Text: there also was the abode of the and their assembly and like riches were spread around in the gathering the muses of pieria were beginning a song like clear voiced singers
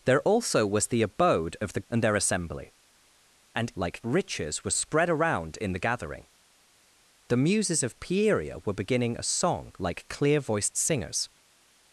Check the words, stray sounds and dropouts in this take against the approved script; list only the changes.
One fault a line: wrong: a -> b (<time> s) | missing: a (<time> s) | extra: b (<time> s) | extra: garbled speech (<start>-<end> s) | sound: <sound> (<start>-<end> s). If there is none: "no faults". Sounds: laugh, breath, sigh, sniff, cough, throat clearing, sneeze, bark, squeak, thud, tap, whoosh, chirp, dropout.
no faults